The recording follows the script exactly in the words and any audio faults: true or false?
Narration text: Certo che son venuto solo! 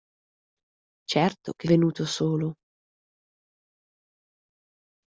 false